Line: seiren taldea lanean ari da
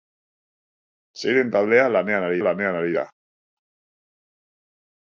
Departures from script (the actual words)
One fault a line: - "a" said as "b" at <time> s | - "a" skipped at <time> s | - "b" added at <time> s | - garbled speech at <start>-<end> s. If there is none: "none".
- "lanean ari" added at 2.4 s